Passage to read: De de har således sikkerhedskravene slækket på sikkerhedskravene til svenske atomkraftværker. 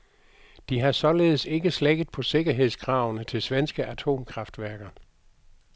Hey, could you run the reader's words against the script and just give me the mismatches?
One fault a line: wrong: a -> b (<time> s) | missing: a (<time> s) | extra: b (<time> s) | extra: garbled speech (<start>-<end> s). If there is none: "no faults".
missing: de (0.8 s)
wrong: sikkerhedskravene -> ikke (1.4 s)